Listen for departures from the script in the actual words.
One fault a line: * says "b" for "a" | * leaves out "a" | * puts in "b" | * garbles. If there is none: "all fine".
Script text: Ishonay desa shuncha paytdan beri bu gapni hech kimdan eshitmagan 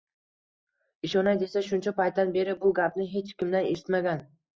all fine